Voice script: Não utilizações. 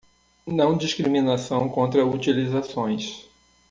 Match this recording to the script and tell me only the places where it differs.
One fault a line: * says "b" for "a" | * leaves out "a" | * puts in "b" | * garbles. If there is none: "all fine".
* puts in "discriminação contra"